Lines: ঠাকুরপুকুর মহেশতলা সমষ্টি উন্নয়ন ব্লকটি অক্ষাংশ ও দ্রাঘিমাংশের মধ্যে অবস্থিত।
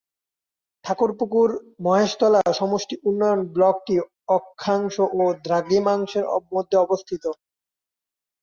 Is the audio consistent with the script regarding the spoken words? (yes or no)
yes